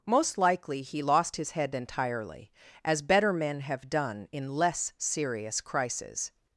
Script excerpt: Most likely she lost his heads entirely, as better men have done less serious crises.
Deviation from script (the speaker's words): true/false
true